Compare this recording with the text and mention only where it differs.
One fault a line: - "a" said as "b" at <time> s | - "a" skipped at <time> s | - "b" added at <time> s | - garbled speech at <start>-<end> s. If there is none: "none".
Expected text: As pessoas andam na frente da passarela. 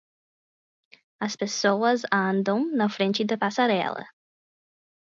none